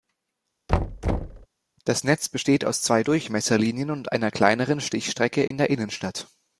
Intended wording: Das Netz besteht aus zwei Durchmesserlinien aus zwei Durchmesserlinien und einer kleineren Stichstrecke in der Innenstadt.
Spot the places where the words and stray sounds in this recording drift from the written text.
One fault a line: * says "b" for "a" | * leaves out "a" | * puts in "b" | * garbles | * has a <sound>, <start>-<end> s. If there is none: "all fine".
* has a thud, 0.7-1.5 s
* leaves out "aus zwei Durchmesserlinien"
* has a dropout, 5.5-5.5 s